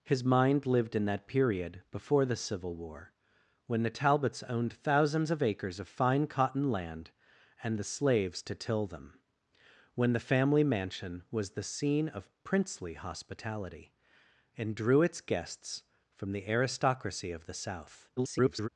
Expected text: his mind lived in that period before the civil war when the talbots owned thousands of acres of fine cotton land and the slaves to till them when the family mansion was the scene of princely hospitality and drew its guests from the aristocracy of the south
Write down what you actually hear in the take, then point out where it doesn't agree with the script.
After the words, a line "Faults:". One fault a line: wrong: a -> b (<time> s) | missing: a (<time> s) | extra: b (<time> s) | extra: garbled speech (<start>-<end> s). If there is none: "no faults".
his mind lived in that period before the civil war when the talbots owned thousands of acres of fine cotton land and the slaves to till them when the family mansion was the scene of princely hospitality and drew its guests from the aristocracy of the south [garbled]
Faults:
extra: garbled speech (18.2-18.7 s)